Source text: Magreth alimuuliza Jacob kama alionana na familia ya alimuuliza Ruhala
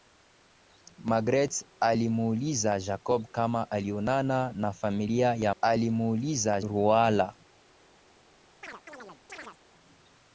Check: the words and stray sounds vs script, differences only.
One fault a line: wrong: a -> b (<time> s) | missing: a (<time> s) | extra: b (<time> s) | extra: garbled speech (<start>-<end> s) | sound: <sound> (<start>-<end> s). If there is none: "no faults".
sound: chirp (8.6-9.6 s)